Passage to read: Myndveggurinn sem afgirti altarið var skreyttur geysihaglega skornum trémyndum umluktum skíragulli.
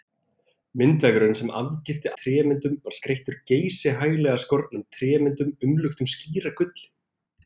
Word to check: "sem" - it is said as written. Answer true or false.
true